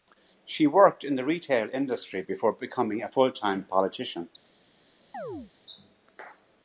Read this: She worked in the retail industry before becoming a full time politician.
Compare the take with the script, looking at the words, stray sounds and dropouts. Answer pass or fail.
fail